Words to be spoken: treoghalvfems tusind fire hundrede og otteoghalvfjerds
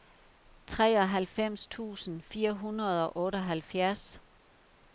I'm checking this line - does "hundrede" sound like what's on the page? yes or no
yes